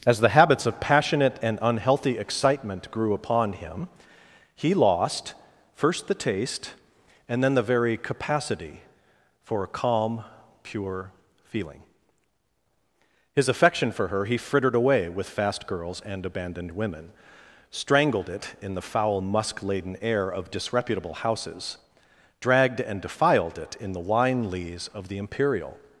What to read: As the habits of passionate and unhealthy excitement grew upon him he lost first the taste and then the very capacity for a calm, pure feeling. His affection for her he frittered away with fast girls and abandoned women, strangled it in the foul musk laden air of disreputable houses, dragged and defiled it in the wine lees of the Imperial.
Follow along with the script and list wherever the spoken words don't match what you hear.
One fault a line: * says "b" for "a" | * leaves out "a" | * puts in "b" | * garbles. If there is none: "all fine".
all fine